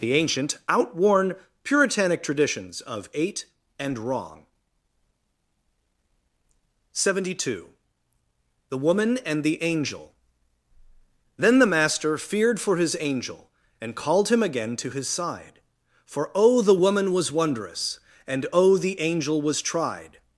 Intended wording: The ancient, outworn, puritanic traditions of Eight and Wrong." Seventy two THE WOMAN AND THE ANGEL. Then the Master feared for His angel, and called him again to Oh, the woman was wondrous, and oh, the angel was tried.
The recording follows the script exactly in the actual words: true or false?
false